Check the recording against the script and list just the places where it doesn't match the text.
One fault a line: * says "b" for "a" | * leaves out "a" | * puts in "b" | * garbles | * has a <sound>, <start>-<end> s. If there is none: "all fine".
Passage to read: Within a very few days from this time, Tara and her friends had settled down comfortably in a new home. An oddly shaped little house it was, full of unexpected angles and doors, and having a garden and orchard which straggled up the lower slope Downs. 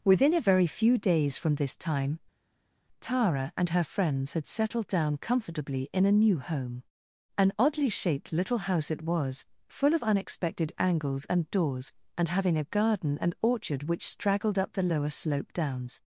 all fine